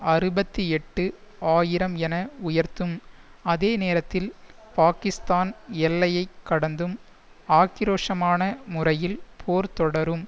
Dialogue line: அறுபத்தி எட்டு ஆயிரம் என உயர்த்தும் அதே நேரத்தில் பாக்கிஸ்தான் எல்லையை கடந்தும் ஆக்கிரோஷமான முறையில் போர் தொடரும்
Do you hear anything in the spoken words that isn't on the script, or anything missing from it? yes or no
no